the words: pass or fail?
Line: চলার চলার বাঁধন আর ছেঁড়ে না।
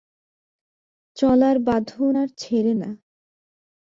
fail